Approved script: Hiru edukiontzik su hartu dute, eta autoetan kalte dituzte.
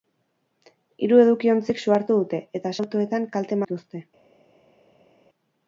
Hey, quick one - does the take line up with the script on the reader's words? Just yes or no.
yes